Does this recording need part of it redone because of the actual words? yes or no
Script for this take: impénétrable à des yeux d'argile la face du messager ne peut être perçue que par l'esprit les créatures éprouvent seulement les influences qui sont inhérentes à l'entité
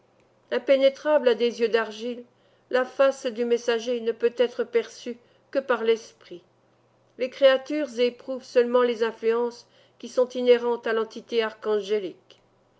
no